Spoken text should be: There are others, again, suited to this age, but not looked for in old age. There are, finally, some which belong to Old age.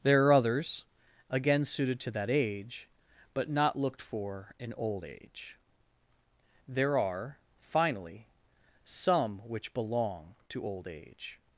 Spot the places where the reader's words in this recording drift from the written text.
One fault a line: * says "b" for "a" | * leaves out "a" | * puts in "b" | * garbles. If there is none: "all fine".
* says "that" for "this"